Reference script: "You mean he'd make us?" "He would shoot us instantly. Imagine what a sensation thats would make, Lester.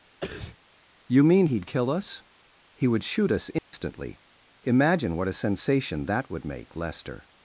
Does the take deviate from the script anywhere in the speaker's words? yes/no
yes